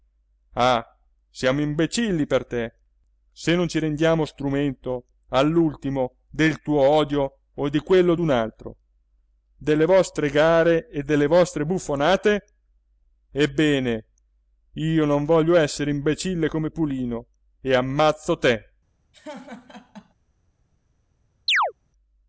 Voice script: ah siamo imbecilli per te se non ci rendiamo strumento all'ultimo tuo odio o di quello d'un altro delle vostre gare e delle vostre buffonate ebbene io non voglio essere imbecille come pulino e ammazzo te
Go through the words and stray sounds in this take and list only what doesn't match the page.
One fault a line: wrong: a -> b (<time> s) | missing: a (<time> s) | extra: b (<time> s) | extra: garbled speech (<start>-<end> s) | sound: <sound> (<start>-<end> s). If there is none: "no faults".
extra: del (6.3 s)
sound: laugh (19.1-20.1 s)
sound: chirp (21.5-21.7 s)